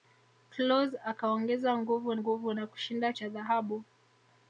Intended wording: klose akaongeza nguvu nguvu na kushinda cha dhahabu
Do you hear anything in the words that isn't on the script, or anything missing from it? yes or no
no